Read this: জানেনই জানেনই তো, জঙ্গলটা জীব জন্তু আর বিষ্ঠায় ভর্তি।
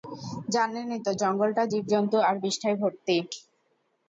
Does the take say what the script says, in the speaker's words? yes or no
no